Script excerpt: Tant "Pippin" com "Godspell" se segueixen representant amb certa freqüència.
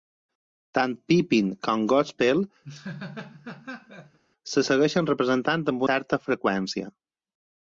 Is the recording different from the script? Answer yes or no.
no